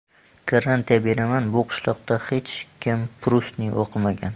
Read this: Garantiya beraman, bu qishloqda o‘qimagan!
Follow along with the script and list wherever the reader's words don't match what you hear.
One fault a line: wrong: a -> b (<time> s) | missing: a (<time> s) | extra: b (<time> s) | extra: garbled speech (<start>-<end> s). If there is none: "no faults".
extra: hech kim Prustni (2.3 s)